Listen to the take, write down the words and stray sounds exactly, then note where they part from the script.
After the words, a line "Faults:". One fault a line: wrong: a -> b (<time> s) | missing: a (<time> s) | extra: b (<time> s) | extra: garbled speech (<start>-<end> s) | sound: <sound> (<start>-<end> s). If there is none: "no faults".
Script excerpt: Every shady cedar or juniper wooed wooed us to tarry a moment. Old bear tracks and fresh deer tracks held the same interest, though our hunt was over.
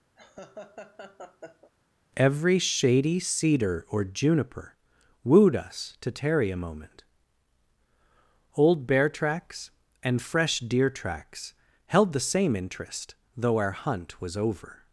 Every shady cedar or juniper wooed us to tarry a moment. Old bear tracks and fresh deer tracks held the same interest, though our hunt was over.
Faults:
sound: laugh (0.2-1.7 s)
missing: wooed (5.6 s)